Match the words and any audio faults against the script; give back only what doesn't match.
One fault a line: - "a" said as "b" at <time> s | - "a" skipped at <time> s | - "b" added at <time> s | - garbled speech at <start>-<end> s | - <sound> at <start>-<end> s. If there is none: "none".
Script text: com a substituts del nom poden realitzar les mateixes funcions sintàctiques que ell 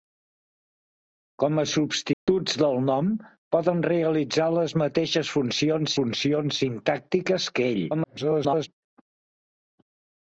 - dropout at 2.1-2.3 s
- "funcions" added at 6.0 s
- garbled speech at 7.9-8.7 s